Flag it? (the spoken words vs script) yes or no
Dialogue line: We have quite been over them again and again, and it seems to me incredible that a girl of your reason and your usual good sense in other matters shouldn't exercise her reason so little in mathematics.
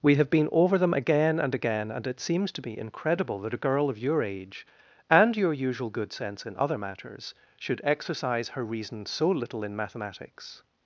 yes